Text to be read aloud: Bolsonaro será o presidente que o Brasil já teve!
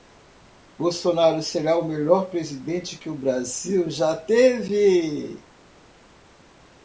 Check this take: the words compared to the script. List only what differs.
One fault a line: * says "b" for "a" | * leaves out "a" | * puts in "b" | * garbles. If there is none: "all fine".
* puts in "melhor"